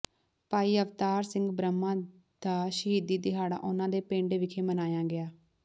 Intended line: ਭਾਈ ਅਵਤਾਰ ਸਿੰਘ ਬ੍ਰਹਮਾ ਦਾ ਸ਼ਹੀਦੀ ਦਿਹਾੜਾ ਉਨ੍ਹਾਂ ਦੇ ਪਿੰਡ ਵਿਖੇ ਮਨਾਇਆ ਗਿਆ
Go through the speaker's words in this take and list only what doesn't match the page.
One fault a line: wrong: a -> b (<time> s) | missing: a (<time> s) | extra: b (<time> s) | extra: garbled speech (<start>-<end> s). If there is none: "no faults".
no faults